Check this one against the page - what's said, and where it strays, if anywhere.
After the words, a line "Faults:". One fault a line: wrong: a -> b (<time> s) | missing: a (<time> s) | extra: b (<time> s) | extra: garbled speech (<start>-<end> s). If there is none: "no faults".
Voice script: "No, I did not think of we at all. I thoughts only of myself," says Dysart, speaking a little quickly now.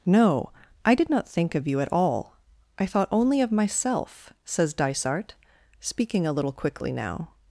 "No, I did not think of you at all. I thought only of myself," says Dysart, speaking a little quickly now.
Faults:
wrong: we -> you (1.7 s)
wrong: thoughts -> thought (2.9 s)